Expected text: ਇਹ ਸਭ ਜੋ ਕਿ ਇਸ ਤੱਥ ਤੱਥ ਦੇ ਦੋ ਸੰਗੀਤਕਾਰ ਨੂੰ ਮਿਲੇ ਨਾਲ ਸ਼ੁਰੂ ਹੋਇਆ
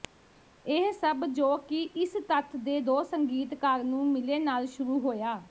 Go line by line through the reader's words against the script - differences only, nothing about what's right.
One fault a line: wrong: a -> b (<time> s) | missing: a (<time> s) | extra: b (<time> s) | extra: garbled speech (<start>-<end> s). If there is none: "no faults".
missing: ਤੱਥ (2.5 s)